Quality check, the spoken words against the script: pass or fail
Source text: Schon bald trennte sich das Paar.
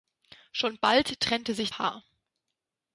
fail